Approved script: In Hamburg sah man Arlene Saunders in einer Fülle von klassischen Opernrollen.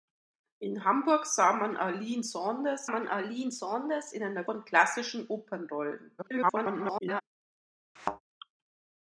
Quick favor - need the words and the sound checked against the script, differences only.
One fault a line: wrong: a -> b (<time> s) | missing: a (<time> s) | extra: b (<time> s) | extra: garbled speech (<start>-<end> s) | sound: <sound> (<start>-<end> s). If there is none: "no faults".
extra: man Arlene Saunders (2.9 s)
missing: Fülle (4.4 s)
extra: garbled speech (6.2-7.2 s)
sound: thud (8.0-8.2 s)